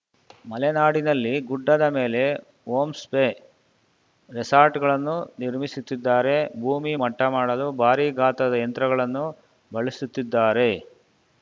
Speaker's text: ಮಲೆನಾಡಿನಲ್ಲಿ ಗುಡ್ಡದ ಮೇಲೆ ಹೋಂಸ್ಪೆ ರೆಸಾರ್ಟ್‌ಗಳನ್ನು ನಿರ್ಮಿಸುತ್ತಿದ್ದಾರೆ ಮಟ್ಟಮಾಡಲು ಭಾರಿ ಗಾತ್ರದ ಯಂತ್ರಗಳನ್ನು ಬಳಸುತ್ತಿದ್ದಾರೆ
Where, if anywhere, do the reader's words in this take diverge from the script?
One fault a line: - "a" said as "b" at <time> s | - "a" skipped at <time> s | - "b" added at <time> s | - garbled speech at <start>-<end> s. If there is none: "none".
- "ಭೂಮಿ" added at 6.6 s